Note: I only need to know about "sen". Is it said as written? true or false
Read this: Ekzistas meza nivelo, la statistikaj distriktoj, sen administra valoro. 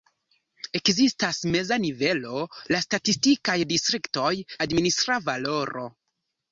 false